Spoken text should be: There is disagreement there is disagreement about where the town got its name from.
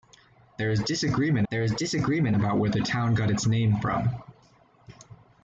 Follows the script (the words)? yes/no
yes